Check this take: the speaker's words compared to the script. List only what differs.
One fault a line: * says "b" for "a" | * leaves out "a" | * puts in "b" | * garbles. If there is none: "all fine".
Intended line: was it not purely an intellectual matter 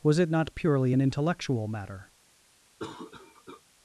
all fine